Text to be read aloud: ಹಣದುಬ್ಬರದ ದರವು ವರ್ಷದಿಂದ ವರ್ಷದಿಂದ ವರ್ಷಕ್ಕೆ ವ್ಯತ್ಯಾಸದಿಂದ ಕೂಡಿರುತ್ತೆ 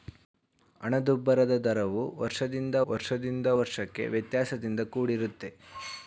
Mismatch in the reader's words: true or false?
false